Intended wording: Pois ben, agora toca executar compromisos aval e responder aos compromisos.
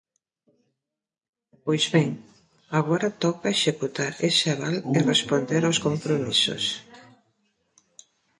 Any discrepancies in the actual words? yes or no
yes